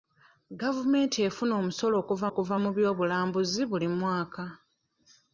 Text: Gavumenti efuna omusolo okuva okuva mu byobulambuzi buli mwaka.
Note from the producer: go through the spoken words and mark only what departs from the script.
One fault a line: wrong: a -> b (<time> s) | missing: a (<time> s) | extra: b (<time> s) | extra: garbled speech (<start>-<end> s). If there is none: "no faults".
no faults